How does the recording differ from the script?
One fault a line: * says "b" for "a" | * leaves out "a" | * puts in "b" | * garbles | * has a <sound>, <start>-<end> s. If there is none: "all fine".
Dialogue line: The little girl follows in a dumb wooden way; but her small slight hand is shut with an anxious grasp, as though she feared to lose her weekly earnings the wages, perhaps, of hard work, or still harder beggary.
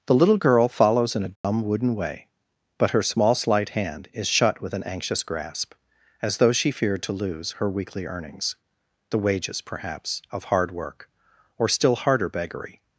* has a dropout, 1.4-1.4 s